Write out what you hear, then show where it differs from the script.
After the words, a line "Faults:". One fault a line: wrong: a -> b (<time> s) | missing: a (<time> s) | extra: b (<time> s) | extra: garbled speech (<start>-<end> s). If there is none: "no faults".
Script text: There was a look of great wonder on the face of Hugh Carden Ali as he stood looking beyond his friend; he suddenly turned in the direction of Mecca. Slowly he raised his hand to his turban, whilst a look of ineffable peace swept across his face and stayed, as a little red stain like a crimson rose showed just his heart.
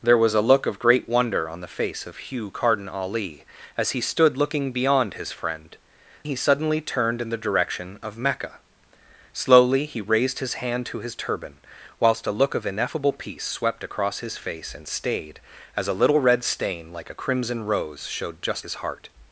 There was a look of great wonder on the face of Hugh Carden Ali as he stood looking beyond his friend; he suddenly turned in the direction of Mecca. Slowly he raised his hand to his turban, whilst a look of ineffable peace swept across his face and stayed, as a little red stain like a crimson rose showed just his heart.
Faults:
no faults